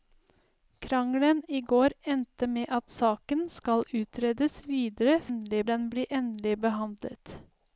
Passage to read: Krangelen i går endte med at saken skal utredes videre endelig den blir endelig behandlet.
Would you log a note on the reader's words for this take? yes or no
no